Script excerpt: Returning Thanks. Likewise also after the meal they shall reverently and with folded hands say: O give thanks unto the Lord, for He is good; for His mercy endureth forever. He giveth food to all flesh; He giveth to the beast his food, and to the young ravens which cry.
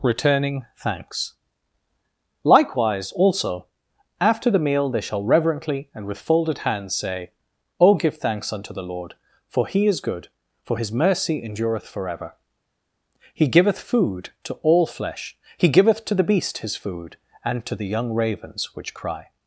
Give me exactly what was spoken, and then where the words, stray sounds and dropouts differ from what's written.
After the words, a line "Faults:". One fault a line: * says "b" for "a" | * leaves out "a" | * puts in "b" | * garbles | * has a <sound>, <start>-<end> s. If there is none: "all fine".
Returning Thanks. Likewise also after the meal they shall reverently and with folded hands say: O give thanks unto the Lord, for He is good; for His mercy endureth forever. He giveth food to all flesh; He giveth to the beast his food, and to the young ravens which cry.
Faults:
all fine